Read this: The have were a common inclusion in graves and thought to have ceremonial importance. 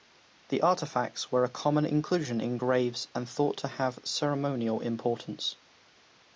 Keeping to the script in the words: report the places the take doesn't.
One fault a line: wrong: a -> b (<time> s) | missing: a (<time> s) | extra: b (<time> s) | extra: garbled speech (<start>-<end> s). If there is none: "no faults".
wrong: have -> artifacts (0.6 s)